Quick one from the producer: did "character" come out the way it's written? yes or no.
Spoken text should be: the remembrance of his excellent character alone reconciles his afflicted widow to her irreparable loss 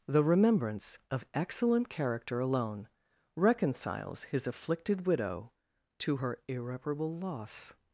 yes